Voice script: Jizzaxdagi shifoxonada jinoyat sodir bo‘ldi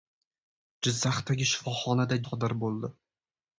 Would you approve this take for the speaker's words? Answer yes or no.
no